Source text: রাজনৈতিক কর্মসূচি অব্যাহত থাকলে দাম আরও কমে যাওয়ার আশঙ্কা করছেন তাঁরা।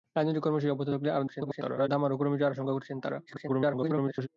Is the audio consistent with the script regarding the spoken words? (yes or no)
no